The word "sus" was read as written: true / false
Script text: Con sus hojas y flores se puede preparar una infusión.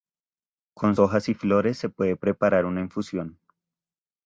false